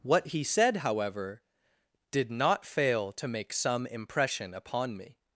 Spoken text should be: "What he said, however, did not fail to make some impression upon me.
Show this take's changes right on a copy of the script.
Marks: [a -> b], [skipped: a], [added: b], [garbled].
"What he said, however, did not fail to make some impression upon me.